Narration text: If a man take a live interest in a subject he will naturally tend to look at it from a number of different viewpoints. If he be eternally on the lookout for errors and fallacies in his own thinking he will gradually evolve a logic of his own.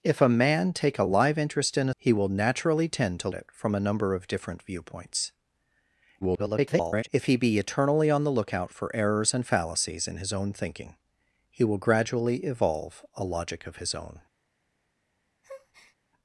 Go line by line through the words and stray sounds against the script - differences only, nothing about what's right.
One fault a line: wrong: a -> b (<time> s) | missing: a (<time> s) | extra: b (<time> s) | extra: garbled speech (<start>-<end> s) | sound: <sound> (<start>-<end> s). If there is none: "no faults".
missing: subject (1.9 s)
missing: look at (3.3 s)
extra: garbled speech (6.2-7.1 s)
sound: breath (15.4-16.0 s)